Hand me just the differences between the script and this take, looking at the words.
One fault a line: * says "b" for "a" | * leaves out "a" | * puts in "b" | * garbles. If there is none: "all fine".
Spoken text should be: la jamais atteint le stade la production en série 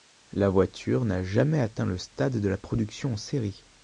* puts in "voiture n'a"
* puts in "de"